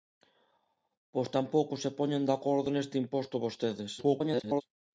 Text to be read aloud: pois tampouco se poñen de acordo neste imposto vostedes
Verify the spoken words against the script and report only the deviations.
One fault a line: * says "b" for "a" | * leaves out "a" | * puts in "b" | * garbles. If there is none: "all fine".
* garbles